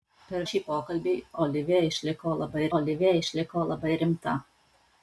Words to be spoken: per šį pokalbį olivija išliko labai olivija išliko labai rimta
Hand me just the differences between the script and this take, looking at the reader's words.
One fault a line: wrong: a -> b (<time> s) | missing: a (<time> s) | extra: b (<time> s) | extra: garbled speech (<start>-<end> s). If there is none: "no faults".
no faults